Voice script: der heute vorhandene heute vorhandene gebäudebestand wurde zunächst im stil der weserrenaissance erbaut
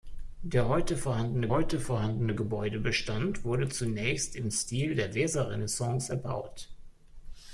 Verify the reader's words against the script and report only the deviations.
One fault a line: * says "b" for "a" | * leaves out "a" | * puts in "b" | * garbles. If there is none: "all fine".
all fine